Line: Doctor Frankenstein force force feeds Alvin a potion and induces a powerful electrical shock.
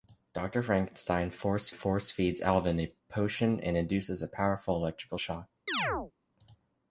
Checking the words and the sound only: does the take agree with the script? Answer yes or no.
no